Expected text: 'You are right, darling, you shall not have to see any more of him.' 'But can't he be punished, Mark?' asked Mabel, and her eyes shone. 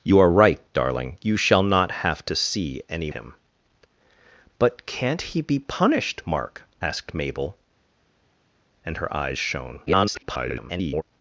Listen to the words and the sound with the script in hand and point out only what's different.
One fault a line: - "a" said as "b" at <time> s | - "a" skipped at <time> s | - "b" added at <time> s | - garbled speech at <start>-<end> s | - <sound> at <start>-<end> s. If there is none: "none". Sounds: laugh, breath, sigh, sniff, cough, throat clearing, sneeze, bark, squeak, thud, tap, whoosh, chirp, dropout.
- "more of" skipped at 3.1 s
- garbled speech at 9.9-11.0 s